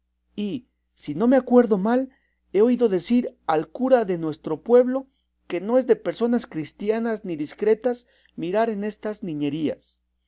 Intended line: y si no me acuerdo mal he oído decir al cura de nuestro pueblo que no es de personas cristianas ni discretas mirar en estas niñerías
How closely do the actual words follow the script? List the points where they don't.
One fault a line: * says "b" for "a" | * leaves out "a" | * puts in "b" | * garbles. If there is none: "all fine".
all fine